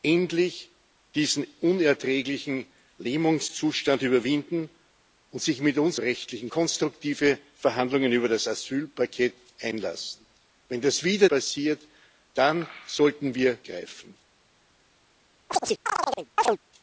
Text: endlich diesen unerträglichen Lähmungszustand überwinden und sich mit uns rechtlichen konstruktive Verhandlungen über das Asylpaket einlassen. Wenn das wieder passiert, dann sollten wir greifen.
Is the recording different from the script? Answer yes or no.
no